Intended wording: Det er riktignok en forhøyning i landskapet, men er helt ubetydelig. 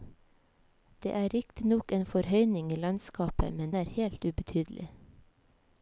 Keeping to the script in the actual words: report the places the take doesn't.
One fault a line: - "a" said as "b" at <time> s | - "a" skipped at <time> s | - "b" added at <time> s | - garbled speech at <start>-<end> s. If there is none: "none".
none